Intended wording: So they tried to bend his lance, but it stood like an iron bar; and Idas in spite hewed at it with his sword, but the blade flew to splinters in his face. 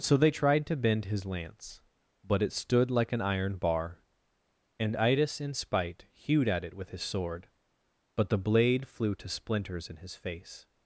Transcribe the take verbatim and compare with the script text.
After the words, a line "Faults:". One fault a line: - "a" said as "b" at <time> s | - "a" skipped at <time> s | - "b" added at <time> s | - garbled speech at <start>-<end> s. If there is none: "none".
So they tried to bend his lance, but it stood like an iron bar; and Idas in spite hewed at it with his sword, but the blade flew to splinters in his face.
Faults:
none